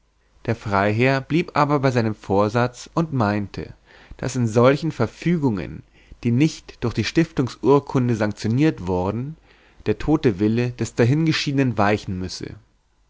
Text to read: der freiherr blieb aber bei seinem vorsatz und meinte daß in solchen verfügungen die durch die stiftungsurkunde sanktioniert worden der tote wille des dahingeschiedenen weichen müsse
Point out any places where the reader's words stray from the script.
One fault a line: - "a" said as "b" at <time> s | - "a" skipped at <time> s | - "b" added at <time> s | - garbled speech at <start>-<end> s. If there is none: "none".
- "nicht" added at 6.3 s